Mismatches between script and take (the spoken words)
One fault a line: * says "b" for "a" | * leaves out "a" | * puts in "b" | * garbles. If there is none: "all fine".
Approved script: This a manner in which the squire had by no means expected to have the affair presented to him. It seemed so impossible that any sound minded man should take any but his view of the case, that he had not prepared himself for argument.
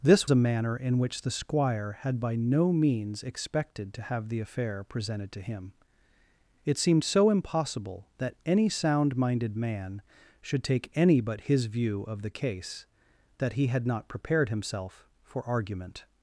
all fine